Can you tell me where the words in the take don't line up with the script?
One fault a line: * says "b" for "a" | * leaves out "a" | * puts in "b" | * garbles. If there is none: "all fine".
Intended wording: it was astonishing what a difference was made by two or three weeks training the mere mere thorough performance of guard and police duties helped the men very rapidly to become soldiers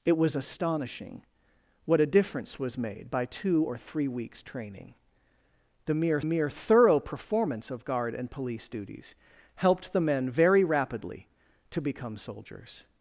all fine